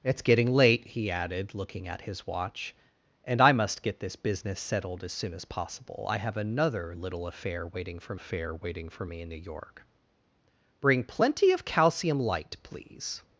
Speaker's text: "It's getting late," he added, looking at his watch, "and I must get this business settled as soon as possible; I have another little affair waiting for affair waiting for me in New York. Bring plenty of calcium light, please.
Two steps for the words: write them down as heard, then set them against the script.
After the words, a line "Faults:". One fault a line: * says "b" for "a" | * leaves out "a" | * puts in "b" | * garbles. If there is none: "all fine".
"It's getting late," he added, looking at his watch, "and I must get this business settled as soon as possible; I have another little affair waiting for affair waiting for me in New York. Bring plenty of calcium light, please.
Faults:
all fine